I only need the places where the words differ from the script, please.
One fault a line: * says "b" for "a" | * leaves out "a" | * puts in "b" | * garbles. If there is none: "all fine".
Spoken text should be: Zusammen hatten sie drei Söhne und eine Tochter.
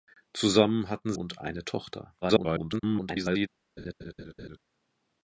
* leaves out "sie drei Söhne"
* garbles